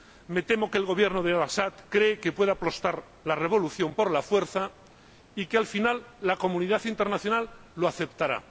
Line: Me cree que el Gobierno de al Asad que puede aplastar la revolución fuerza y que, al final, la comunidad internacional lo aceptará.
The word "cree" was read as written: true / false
false